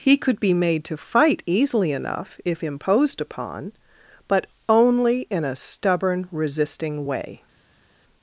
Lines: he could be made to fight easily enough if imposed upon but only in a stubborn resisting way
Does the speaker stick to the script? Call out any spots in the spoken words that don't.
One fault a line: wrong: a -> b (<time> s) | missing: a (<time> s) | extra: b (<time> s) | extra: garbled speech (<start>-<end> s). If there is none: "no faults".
no faults